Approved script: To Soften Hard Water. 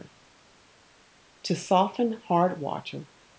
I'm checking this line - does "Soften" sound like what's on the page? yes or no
yes